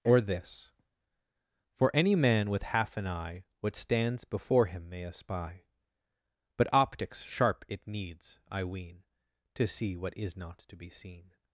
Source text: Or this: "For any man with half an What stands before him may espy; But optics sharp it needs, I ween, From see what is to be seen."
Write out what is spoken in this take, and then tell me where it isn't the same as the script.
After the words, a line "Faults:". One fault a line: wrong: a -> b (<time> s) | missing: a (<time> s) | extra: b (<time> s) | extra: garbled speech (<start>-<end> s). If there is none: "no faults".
Or this: "For any man with half an eye What stands before him may espy; But optics sharp it needs, I ween, To see what is not to be seen."
Faults:
extra: eye (3.1 s)
wrong: From -> To (9.5 s)
extra: not (10.4 s)